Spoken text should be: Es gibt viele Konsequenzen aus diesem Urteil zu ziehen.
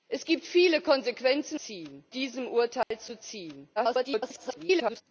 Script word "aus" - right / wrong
wrong